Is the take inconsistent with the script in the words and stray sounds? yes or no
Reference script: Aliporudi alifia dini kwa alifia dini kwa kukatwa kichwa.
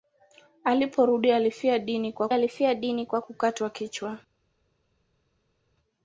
no